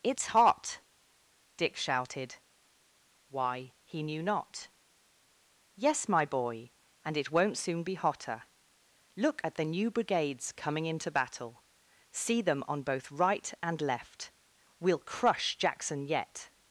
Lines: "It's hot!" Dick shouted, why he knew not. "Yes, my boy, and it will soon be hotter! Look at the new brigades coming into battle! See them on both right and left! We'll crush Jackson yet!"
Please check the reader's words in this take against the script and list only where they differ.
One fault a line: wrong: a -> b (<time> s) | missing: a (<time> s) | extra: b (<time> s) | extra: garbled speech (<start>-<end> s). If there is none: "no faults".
wrong: will -> won't (7.3 s)